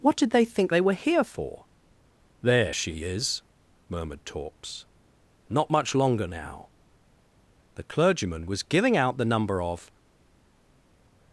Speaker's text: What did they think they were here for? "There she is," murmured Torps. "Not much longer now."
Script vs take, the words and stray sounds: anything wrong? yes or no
yes